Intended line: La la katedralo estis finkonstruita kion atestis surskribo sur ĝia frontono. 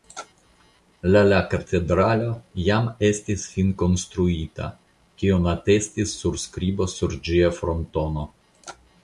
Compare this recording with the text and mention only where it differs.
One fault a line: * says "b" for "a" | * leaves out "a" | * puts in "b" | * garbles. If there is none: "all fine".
* puts in "jam"